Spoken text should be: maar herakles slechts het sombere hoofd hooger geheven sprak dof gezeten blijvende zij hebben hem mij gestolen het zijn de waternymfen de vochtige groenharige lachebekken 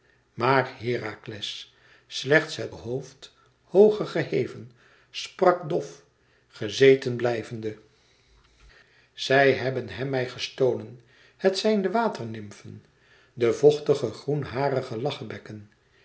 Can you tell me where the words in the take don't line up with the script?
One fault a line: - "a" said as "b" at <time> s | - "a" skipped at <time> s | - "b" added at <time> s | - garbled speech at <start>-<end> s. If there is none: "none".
- "sombere" skipped at 2.8 s